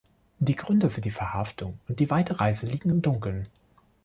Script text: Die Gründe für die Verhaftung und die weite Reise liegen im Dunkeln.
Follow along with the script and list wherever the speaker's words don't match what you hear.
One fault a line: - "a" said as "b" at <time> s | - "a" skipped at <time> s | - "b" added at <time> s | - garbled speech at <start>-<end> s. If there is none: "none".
none